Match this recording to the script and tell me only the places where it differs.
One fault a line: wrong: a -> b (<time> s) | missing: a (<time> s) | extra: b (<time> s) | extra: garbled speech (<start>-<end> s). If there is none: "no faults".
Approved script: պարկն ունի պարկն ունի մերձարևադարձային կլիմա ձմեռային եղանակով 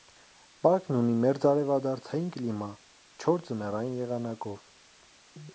missing: պարկն ունի (1.2 s)
extra: չոր (3.2 s)